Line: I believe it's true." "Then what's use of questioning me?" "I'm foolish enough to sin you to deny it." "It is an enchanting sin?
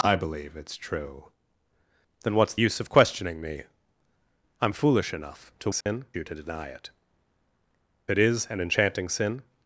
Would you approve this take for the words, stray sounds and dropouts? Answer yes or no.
no